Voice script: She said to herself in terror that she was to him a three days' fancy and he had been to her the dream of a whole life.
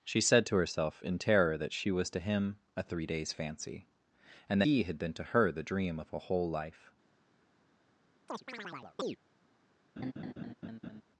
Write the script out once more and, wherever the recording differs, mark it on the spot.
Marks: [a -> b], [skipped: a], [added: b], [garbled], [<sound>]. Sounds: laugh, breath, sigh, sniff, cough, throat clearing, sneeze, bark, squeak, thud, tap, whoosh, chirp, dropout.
She said to herself in terror that she was to him a three days' fancy and he had been to her the dream of a whole life. [chirp] [laugh]